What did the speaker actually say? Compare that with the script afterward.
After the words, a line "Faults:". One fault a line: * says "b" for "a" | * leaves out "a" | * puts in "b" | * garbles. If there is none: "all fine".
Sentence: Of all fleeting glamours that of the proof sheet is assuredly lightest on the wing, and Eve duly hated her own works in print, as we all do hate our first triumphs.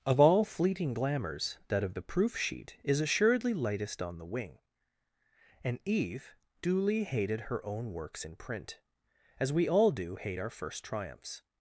Of all fleeting glamours that of the proof sheet is assuredly lightest on the wing, and Eve duly hated her own works in print, as we all do hate our first triumphs.
Faults:
all fine